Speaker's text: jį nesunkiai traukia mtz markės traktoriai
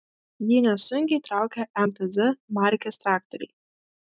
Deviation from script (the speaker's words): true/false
false